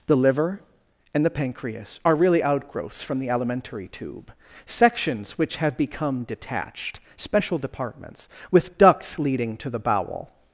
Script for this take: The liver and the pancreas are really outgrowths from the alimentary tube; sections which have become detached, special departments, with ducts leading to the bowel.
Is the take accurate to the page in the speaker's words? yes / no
yes